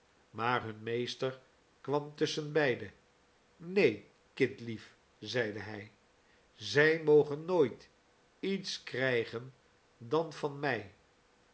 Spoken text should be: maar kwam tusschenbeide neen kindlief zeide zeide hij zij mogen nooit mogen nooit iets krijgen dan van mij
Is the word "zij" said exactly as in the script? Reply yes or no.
yes